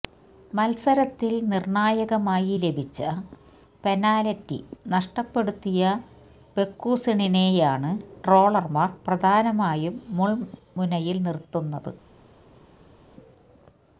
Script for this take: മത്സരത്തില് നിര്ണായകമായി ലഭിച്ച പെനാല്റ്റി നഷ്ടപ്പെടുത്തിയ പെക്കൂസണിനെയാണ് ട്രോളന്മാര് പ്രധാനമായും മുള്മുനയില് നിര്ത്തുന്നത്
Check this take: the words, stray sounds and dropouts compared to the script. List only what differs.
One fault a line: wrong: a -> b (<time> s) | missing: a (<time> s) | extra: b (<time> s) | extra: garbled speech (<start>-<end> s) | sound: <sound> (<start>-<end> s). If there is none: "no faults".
no faults